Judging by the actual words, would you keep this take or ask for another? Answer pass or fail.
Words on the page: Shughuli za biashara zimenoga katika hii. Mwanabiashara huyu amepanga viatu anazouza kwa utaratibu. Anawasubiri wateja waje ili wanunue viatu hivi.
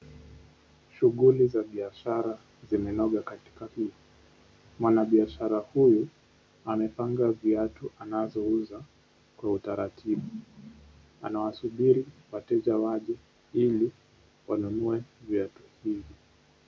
pass